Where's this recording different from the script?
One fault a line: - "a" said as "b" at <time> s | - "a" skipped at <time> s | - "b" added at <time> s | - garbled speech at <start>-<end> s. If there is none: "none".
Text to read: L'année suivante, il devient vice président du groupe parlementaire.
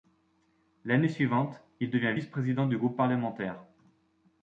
none